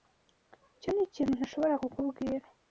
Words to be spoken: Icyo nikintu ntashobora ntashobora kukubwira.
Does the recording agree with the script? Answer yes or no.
no